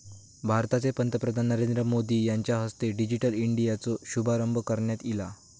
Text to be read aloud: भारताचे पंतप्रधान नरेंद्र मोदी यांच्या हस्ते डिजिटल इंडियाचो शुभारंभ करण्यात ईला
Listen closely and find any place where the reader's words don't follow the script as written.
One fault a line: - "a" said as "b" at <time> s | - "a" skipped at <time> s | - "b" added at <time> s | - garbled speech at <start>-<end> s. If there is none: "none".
none